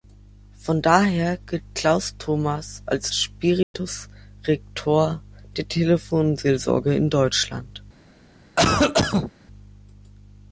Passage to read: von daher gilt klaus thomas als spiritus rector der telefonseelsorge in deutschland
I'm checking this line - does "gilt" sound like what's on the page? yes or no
yes